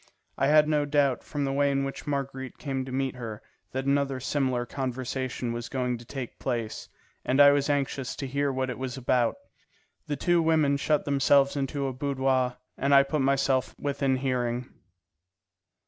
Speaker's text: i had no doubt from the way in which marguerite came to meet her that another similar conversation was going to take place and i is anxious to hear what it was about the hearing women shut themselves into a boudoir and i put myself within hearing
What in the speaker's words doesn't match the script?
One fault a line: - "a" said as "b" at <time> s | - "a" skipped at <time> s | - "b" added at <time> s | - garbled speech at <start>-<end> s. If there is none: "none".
- "is" said as "was" at 7.5 s
- "hearing" said as "two" at 10.2 s